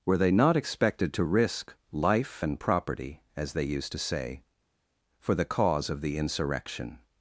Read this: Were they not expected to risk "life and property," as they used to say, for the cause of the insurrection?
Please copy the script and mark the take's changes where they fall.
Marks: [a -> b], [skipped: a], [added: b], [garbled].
Were they not expected to risk "life and property," as they used to say, for the cause of the insurrection?